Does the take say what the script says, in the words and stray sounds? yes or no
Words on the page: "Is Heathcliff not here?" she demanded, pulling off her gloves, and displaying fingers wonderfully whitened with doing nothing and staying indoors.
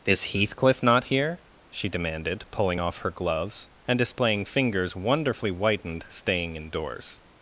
no